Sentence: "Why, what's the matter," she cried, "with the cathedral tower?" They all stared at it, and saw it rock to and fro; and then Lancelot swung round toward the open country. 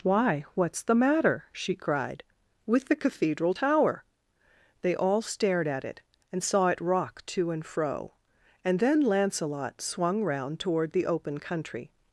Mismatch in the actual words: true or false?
false